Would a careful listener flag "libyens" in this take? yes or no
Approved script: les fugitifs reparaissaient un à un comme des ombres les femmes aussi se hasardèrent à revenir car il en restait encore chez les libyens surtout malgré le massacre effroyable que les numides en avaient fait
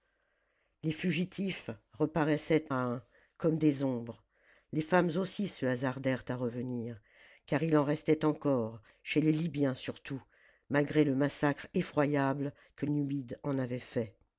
no